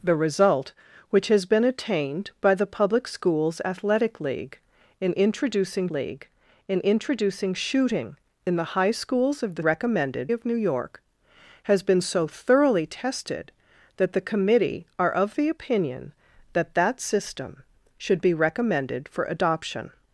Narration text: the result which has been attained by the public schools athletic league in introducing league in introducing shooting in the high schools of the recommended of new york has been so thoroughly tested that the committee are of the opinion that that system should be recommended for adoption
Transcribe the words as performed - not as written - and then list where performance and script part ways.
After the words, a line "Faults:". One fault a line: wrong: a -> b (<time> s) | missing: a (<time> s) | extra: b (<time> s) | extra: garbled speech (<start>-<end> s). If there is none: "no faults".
the result which has been attained by the public schools athletic league in introducing league in introducing shooting in the high schools of the recommended of new york has been so thoroughly tested that the committee are of the opinion that that system should be recommended for adoption
Faults:
no faults